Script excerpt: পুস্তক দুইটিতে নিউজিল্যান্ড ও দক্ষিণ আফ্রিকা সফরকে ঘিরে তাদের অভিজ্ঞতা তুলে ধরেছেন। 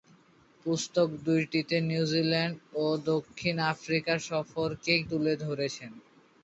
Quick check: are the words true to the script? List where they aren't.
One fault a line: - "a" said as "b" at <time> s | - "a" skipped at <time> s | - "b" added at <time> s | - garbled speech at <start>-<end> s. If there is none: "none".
- "ঘিরে তাদের অভিজ্ঞতা" skipped at 4.9 s